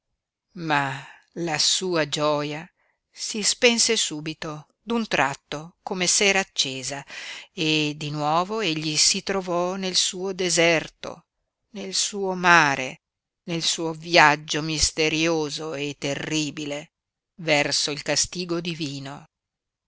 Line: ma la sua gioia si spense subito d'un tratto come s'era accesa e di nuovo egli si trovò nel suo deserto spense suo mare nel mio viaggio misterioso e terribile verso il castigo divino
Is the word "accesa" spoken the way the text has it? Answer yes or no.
yes